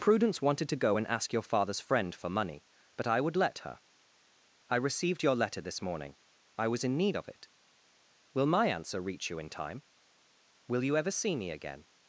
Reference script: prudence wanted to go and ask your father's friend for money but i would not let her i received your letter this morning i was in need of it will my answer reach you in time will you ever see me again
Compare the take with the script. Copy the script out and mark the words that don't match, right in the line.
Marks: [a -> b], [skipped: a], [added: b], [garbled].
prudence wanted to go and ask your father's friend for money but i would [skipped: not] let her i received your letter this morning i was in need of it will my answer reach you in time will you ever see me again